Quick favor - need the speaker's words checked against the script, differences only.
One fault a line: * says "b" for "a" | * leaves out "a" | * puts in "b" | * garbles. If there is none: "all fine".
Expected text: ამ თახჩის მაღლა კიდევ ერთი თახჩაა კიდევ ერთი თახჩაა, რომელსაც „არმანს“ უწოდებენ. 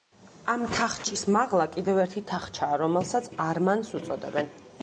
* leaves out "კიდევ ერთი თახჩაა"